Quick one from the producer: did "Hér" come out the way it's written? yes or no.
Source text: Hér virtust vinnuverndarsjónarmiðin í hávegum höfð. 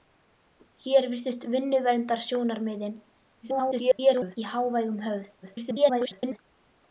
yes